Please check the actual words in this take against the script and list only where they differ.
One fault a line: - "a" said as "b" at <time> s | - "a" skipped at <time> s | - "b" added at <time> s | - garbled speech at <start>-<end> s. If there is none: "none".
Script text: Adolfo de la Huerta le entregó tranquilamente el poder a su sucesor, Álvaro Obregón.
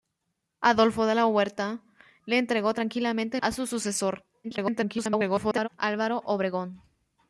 - "el poder" skipped at 3.4 s
- garbled speech at 4.4-5.7 s